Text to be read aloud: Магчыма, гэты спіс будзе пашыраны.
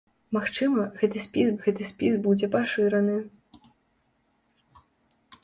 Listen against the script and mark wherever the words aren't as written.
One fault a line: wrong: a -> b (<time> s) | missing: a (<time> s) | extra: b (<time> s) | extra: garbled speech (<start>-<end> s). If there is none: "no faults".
extra: гэты спіс (1.7 s)